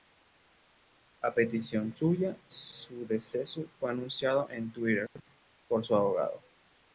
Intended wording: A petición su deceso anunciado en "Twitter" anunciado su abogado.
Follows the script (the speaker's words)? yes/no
no